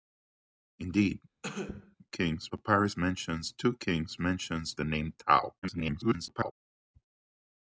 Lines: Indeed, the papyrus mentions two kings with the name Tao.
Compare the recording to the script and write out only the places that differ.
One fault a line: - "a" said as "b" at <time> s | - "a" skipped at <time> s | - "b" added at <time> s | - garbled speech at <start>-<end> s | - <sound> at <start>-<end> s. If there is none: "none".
- cough at 1.4-2.0 s
- "the" said as "kings" at 2.1 s
- "with" said as "mentions" at 4.2 s
- garbled speech at 5.6-6.5 s